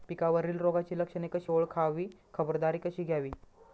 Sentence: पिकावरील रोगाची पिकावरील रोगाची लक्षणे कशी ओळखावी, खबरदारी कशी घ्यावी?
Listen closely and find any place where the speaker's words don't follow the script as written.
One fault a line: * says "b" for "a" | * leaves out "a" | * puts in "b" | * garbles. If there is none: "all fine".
* leaves out "पिकावरील रोगाची"